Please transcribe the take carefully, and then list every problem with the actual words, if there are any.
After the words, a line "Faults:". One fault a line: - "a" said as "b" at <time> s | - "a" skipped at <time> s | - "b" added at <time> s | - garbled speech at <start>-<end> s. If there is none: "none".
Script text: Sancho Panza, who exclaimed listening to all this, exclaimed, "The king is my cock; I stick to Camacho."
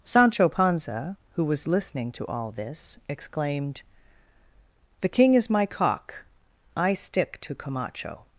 Sancho Panza, who was listening to all this, exclaimed, "The king is my cock; I stick to Camacho."
Faults:
- "exclaimed" said as "was" at 1.4 s